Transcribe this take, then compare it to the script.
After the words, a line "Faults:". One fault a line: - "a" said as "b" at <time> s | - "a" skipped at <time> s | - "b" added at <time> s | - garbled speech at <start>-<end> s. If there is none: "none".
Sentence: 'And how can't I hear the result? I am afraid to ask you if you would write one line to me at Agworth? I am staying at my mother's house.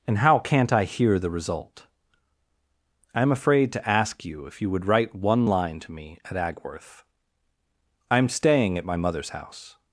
'And how can't I hear the result? I am afraid to ask you if you would write one line to me at Agworth? I am staying at my mother's house.
Faults:
none